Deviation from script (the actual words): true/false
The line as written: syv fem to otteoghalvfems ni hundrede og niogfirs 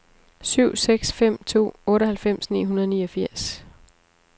true